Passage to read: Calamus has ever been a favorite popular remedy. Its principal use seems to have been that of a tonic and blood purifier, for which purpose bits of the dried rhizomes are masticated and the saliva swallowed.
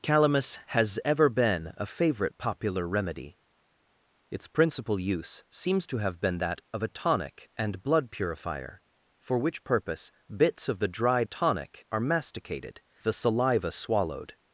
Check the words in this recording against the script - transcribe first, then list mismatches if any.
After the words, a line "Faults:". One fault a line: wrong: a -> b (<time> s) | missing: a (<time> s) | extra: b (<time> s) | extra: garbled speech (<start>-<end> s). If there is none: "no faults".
Calamus has ever been a favorite popular remedy. Its principal use seems to have been that of a tonic and blood purifier, for which purpose bits of the dried tonic are masticated the saliva swallowed.
Faults:
wrong: rhizomes -> tonic (11.2 s)
missing: and (12.8 s)